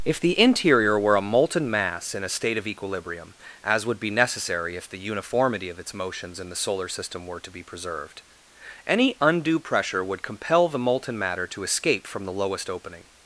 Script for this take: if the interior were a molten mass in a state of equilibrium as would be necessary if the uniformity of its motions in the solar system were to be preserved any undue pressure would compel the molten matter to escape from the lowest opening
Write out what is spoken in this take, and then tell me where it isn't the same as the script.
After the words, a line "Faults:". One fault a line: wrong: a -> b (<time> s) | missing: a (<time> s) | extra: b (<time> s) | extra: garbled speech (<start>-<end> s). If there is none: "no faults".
if the interior were a molten mass in a state of equilibrium as would be necessary if the uniformity of its motions in the solar system were to be preserved any undue pressure would compel the molten matter to escape from the lowest opening
Faults:
no faults